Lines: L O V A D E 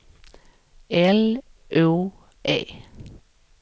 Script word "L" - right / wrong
right